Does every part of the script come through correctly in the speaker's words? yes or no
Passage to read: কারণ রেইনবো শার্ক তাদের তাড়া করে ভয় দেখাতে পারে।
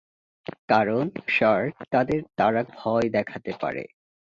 no